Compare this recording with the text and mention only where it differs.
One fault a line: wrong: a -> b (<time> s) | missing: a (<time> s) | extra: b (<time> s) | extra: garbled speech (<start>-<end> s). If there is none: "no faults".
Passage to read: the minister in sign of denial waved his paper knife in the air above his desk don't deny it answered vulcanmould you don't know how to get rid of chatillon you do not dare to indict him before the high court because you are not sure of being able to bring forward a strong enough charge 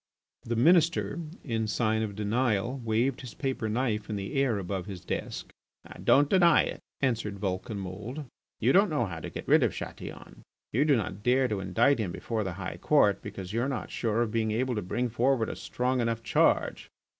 no faults